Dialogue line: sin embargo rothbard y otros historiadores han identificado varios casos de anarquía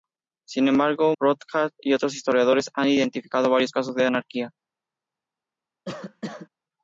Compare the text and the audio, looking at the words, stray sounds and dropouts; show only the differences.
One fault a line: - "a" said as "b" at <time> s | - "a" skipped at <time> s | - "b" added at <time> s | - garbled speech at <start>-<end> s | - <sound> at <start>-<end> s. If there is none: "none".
- cough at 5.9-6.5 s